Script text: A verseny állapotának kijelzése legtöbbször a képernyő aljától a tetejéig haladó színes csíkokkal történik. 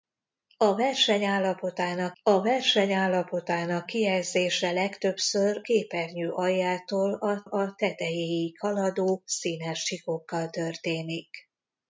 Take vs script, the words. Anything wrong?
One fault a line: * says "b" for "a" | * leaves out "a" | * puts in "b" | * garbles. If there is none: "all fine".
* puts in "a verseny állapotának"
* leaves out "a"
* puts in "a"